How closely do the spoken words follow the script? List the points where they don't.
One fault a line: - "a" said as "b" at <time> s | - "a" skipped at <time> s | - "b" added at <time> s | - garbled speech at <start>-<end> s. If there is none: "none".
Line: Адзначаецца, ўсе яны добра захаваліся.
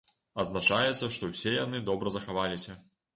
- "што" added at 1.2 s